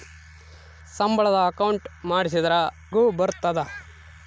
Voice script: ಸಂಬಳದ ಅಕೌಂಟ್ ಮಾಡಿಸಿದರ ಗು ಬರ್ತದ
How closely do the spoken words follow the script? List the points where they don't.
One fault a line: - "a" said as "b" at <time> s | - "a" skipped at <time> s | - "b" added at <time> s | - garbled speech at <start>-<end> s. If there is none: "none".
none